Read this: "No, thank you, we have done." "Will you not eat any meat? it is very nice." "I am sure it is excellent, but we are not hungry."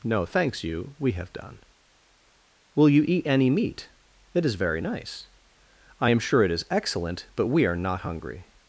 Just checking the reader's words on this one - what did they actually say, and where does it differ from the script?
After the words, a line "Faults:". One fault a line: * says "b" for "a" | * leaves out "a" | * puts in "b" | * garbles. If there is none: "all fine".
"No, thanks you, we have done." "Will you eat any meat? it is very nice." "I am sure it is excellent, but we are not hungry."
Faults:
* says "thanks" for "thank"
* leaves out "not"